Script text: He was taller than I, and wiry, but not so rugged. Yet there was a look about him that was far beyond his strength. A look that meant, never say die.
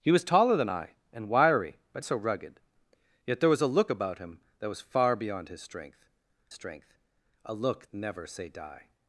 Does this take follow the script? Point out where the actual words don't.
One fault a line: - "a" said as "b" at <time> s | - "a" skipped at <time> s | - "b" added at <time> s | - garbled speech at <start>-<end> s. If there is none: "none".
- "not" skipped at 2.0 s
- "strength" added at 6.5 s
- "that meant" skipped at 7.9 s